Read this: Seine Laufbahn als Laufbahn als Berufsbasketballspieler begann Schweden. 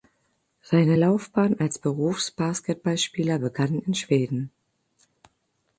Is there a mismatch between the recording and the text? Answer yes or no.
yes